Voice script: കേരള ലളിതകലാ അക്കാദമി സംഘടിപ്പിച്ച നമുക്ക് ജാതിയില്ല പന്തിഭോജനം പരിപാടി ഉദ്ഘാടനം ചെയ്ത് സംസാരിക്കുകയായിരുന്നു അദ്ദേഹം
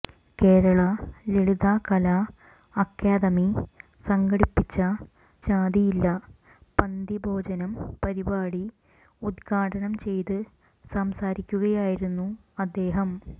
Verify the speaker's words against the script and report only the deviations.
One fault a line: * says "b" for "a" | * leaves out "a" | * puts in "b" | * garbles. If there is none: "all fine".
* leaves out "നമുക്ക്"